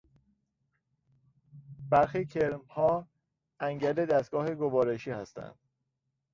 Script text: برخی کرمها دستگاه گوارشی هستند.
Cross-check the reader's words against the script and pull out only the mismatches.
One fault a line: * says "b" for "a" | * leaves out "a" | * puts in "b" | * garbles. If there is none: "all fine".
* puts in "انگل"